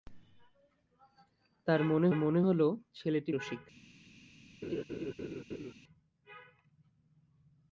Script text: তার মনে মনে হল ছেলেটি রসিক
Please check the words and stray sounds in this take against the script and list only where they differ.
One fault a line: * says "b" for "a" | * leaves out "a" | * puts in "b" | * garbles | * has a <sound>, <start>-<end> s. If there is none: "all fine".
* has a laugh, 4.6-5.7 s